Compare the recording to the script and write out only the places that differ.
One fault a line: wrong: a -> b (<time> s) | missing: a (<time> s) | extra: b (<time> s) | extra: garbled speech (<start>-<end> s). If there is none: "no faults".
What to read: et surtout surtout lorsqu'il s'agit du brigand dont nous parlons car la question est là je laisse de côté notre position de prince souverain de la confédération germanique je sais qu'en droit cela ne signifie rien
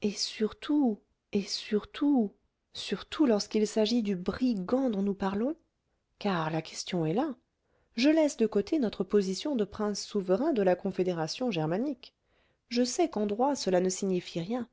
extra: et surtout (1.3 s)